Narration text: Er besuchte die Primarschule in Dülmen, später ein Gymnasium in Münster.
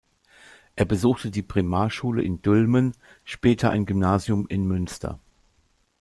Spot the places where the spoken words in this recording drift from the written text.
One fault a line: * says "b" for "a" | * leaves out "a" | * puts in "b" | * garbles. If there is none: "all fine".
all fine